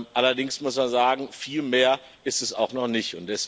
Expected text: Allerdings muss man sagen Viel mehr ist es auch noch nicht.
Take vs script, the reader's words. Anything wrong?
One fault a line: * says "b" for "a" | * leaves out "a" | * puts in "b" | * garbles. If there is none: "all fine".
all fine